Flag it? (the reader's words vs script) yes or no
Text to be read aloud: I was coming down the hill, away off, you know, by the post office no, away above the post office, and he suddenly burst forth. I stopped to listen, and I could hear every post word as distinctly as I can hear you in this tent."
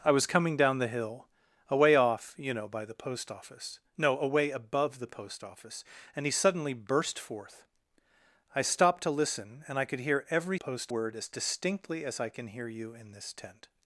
no